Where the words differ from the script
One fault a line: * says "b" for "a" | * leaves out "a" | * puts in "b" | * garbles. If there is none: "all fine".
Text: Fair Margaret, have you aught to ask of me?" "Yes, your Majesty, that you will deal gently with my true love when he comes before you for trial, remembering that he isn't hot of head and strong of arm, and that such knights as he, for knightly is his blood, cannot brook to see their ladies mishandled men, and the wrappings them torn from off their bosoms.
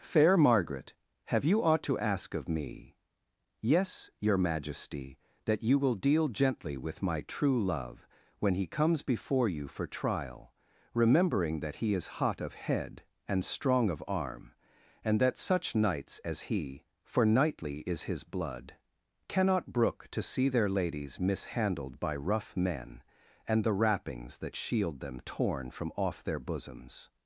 * says "is" for "isn't"
* puts in "by rough"
* puts in "that shield"